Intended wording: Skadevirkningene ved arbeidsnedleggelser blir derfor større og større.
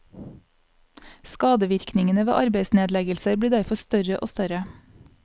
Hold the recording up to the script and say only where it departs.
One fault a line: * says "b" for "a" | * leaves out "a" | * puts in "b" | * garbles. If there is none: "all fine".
all fine